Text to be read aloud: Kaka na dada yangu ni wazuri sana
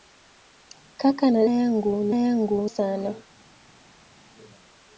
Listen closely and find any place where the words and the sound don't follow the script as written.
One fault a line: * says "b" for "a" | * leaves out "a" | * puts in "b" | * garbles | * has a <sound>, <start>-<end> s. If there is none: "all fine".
* leaves out "dada"
* says "yangu" for "wazuri"